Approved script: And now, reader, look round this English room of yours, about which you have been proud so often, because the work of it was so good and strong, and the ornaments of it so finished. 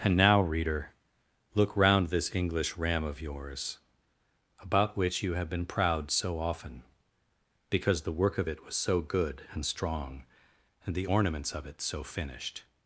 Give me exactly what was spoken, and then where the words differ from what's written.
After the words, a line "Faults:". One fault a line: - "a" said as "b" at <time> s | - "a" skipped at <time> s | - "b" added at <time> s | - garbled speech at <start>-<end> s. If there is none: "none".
And now, reader, look round this English ram of yours, about which you have been proud so often, because the work of it was so good and strong, and the ornaments of it so finished.
Faults:
- "room" said as "ram" at 2.8 s